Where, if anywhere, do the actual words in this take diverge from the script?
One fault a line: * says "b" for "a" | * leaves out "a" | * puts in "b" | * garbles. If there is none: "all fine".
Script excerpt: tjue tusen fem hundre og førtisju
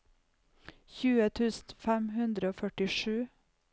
all fine